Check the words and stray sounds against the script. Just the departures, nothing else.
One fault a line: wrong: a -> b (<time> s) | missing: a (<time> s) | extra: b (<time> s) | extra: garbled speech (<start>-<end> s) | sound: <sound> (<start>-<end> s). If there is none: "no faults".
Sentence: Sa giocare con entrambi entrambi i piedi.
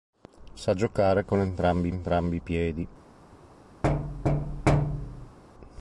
sound: thud (3.8-5.4 s)